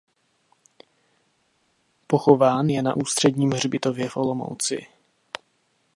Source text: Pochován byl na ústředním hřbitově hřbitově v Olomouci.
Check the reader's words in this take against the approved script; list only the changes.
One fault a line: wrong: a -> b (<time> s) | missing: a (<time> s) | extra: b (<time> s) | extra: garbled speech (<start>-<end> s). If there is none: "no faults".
wrong: byl -> je (2.7 s)
missing: hřbitově (4.1 s)